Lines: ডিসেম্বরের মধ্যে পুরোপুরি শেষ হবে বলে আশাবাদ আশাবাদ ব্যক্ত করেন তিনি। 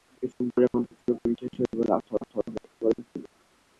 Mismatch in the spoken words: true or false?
false